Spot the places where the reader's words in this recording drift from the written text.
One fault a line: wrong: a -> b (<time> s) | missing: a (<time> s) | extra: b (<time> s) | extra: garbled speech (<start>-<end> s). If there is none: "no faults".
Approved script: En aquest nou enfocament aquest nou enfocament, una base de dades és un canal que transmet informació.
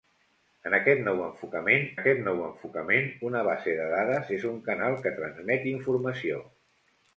no faults